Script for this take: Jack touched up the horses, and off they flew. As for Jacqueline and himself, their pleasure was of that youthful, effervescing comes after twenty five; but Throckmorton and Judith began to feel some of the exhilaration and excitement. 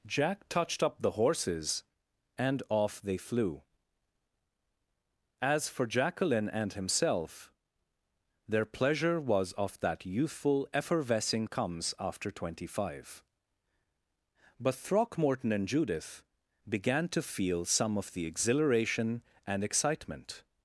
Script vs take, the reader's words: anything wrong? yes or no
no